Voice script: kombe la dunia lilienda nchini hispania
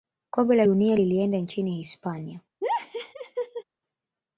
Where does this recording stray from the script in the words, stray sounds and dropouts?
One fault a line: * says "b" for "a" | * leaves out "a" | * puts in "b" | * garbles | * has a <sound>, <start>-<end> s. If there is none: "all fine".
* has a laugh, 2.6-3.6 s